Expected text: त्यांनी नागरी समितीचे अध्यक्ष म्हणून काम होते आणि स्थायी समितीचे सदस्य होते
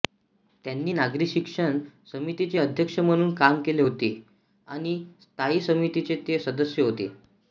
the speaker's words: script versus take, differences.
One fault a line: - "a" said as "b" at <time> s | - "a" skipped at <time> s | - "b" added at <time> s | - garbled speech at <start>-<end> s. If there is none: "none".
- "शिक्षण" added at 1.3 s
- "केले" added at 3.6 s
- "ते" added at 6.3 s